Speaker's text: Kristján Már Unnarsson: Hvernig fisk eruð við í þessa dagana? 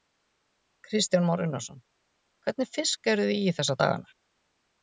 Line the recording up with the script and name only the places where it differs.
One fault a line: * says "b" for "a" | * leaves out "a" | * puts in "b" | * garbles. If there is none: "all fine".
* says "þið" for "við"